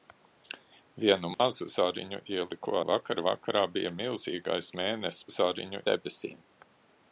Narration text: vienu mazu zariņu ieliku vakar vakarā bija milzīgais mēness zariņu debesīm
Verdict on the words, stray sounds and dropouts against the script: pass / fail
fail